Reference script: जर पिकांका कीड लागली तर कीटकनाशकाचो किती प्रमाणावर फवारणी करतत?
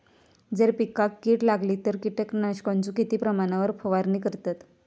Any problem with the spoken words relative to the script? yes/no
no